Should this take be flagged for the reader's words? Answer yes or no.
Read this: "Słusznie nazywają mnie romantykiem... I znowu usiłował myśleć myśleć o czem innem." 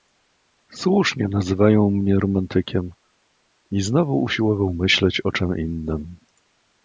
yes